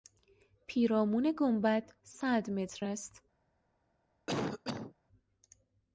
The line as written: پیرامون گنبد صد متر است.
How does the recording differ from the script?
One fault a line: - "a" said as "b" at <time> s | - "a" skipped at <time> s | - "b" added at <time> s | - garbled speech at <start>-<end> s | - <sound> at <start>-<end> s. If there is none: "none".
- cough at 4.3-4.9 s